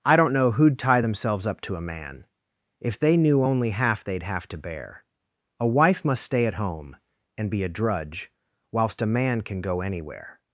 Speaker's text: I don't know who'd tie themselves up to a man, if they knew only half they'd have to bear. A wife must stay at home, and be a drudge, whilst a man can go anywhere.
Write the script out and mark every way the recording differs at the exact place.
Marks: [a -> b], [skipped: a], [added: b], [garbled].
I don't know who'd tie themselves up to a man, if they knew only half they'd have to bear. A wife must stay at home, and be a drudge, whilst a man can go anywhere.